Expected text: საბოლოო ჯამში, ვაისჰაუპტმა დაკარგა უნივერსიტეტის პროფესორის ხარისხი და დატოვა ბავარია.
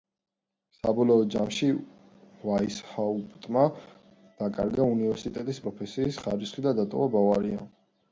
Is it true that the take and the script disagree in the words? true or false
false